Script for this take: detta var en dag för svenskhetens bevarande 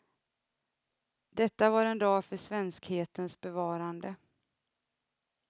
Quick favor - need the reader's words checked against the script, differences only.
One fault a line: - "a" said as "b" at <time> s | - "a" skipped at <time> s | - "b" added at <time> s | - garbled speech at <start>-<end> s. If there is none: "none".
none